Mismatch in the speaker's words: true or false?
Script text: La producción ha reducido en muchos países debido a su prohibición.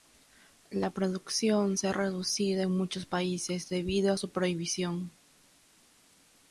true